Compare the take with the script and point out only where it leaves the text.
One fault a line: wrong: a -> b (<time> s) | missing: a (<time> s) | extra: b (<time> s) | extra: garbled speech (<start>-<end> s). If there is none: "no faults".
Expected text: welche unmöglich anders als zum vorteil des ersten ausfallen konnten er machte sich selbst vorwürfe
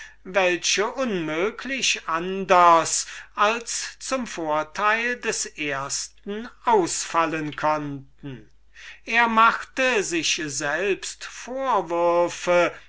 no faults